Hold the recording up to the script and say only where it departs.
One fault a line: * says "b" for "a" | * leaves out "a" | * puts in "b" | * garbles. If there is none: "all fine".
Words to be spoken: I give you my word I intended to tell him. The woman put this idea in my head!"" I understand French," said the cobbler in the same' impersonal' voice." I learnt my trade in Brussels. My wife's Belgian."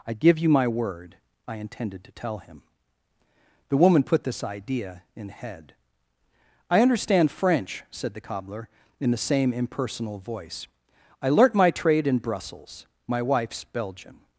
* leaves out "my"